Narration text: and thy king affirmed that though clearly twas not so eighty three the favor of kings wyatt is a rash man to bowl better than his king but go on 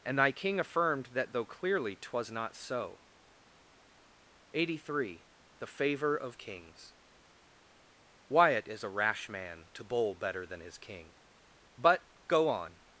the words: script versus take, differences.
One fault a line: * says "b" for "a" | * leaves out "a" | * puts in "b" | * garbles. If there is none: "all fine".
all fine